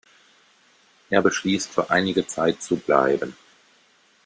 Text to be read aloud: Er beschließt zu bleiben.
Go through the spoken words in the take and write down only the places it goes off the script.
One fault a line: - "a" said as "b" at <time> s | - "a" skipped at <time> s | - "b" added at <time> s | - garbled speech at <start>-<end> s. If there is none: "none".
- "für einige Zeit" added at 1.7 s